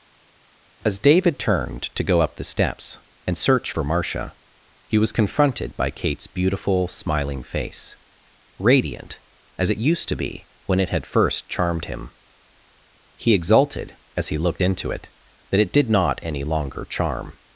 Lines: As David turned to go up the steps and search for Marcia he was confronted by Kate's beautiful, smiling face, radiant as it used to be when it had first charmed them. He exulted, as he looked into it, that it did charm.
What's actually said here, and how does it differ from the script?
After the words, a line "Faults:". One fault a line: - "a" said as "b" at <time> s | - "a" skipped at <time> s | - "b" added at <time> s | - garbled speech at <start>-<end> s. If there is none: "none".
As David turned to go up the steps and search for Marcia he was confronted by Kate's beautiful, smiling face, radiant as it used to be when it had first charmed him. He exulted, as he looked into it, that it did not any longer charm.
Faults:
- "them" said as "him" at 11.8 s
- "not any longer" added at 15.9 s